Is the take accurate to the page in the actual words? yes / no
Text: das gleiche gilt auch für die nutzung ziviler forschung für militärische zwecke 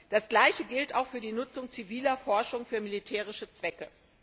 yes